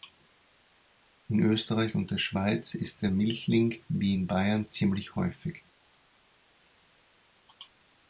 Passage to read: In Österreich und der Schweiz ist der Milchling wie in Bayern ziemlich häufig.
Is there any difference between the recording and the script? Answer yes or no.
no